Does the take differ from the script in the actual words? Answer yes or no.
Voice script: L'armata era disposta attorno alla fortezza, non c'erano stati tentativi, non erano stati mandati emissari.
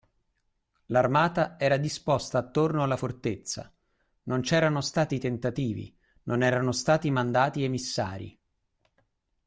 no